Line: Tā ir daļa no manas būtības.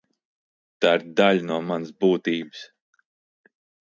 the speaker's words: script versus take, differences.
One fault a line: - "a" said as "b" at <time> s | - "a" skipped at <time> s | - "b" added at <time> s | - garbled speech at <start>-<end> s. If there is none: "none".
none